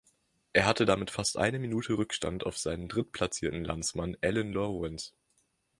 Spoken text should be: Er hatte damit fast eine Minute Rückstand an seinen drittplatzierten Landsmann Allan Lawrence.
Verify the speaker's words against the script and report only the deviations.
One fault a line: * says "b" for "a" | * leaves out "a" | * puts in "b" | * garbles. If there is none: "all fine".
* says "auf" for "an"